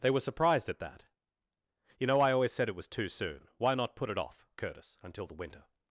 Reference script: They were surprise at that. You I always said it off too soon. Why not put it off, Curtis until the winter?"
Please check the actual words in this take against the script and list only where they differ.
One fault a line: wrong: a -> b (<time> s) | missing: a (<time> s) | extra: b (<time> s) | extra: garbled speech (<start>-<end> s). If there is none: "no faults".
wrong: surprise -> surprised (0.2 s)
extra: know (2.1 s)
wrong: off -> was (2.8 s)